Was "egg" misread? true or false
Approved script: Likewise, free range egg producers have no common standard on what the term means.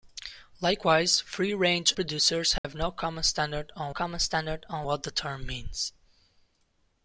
true